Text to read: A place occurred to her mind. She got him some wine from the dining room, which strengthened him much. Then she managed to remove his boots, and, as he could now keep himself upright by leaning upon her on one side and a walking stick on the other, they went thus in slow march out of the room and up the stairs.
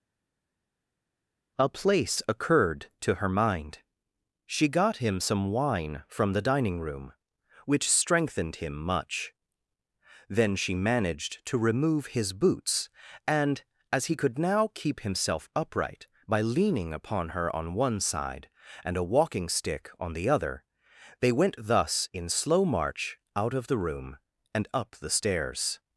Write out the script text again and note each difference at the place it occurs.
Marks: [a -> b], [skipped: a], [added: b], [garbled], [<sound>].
A place occurred to her mind. She got him some wine from the dining room, which strengthened him much. Then she managed to remove his boots, and, as he could now keep himself upright by leaning upon her on one side and a walking stick on the other, they went thus in slow march out of the room and up the stairs.